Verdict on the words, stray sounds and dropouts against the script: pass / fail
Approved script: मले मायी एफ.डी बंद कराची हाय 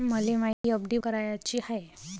fail